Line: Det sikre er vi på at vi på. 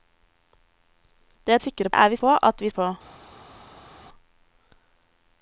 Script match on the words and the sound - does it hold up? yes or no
yes